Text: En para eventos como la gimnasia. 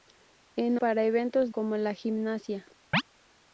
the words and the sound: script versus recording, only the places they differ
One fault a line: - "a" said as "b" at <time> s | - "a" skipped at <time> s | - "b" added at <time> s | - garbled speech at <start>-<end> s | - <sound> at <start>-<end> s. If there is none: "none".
- chirp at 2.9-3.0 s